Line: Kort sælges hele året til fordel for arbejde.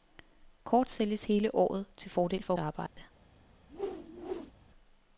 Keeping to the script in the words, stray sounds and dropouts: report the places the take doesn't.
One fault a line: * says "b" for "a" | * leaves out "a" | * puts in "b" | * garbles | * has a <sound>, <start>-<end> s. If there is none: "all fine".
* has a dropout, 2.9-3.0 s
* has a whoosh, 3.7-4.5 s